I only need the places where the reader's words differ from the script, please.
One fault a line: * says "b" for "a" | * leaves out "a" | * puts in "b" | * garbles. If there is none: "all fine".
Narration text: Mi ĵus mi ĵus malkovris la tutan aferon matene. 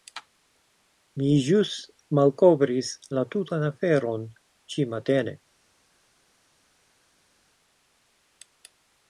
* leaves out "mi ĵus"
* puts in "ĉi"